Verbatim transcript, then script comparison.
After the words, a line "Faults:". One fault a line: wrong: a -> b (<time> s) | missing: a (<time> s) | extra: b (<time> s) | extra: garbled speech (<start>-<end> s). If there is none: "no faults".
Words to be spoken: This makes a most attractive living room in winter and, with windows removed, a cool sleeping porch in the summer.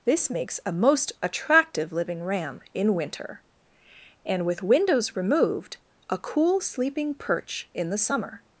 This makes a most attractive living ram in winter and, with windows removed, a cool sleeping perch in the summer.
Faults:
wrong: room -> ram (2.2 s)
wrong: porch -> perch (7.1 s)